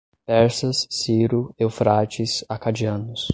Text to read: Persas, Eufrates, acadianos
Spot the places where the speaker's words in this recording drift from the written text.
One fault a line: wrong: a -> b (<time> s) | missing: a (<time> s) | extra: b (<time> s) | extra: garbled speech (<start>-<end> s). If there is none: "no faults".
extra: Ciro (0.9 s)